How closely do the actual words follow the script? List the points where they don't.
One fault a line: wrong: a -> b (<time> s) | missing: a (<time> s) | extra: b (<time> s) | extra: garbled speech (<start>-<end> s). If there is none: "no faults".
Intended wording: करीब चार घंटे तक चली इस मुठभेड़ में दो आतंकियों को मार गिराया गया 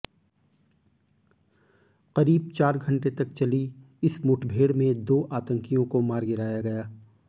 no faults